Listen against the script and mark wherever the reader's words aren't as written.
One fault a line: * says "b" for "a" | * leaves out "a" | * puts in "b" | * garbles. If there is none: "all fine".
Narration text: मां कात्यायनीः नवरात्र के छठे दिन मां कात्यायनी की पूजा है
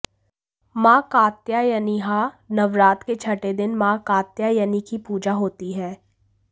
* puts in "होती"